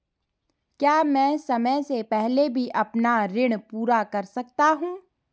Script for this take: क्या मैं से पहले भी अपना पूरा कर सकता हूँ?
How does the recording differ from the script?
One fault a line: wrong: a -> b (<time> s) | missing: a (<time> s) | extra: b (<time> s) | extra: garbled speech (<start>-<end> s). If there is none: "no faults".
extra: समय (1.4 s)
extra: ऋण (3.3 s)